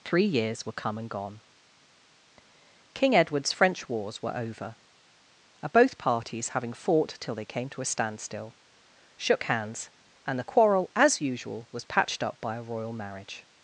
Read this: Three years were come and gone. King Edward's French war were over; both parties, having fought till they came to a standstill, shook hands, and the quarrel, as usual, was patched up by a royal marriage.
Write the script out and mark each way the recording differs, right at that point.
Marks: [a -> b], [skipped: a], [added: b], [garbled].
Three years were come and gone. King Edward's French [war -> wars] were over; both parties, having fought till they came to a standstill, shook hands, and the quarrel, as usual, was patched up by a royal marriage.